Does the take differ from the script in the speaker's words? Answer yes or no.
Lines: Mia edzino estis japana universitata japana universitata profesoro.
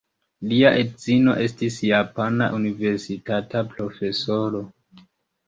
yes